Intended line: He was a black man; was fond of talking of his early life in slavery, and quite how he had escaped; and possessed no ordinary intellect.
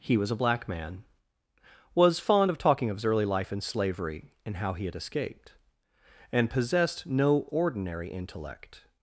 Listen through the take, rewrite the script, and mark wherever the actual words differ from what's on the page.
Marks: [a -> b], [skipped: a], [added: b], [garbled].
He was a black man; was fond of talking of his early life in slavery, and [skipped: quite] how he had escaped; and possessed no ordinary intellect.